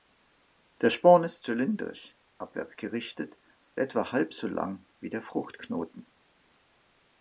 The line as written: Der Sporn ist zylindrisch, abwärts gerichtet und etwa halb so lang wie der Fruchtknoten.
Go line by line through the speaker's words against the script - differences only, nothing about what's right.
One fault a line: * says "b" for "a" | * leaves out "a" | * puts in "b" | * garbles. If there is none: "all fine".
* leaves out "und"